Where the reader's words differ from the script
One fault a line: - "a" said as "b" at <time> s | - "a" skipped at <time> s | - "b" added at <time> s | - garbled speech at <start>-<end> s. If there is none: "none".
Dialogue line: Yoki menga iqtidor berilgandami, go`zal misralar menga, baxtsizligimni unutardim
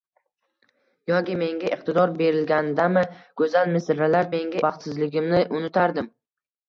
none